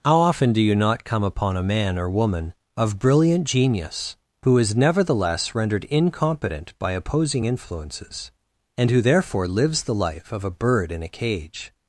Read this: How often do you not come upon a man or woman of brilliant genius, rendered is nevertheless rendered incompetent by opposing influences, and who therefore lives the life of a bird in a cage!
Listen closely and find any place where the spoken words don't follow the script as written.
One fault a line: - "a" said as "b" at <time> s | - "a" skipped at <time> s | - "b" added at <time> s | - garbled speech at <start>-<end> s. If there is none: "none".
- "rendered" said as "who" at 4.4 s